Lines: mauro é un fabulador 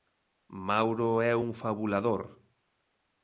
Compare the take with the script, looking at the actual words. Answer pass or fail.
pass